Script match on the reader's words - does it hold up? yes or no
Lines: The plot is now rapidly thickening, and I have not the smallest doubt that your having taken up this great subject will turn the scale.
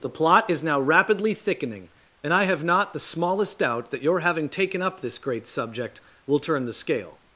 yes